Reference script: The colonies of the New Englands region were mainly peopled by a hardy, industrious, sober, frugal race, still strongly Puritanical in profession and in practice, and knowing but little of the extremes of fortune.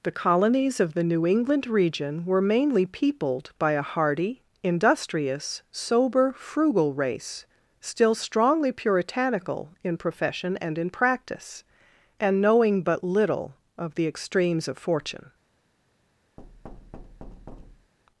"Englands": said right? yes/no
no